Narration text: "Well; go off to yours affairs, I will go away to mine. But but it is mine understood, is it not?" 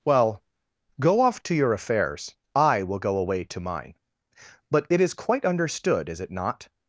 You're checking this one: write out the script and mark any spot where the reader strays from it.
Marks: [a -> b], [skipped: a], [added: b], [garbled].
"Well; go off to [yours -> your] affairs, I will go away to mine. But [skipped: but] it is [mine -> quite] understood, is it not?"